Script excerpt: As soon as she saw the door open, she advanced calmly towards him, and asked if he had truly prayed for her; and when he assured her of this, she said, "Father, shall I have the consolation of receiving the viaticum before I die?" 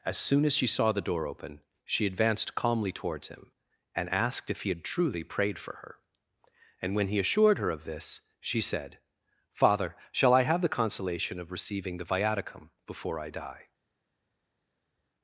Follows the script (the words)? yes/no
yes